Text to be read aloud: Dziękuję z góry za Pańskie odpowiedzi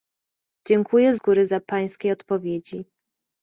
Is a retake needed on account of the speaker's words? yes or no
yes